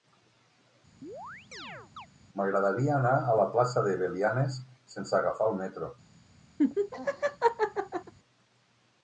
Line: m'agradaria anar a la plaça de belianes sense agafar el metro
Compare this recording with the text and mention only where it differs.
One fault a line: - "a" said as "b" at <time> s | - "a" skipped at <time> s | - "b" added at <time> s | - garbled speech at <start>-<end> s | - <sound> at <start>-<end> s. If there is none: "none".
- chirp at 1.0-2.1 s
- laugh at 6.6-8.1 s